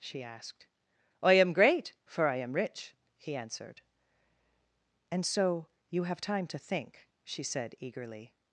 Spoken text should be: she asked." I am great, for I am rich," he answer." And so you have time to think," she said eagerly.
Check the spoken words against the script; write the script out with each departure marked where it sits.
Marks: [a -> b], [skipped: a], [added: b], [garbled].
she asked." I am great, for I am rich," he [answer." -> answered] And so you have time to think," she said eagerly.